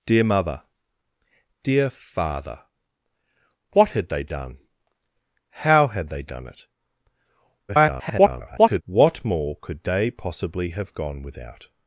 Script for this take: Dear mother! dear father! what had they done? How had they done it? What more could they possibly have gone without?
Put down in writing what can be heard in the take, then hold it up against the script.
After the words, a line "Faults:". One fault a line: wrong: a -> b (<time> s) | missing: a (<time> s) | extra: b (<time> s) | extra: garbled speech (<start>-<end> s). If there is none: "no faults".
Dear mother! dear father! what had they done? How had they done it? [garbled] What more could they possibly have gone without?
Faults:
extra: garbled speech (7.7-8.8 s)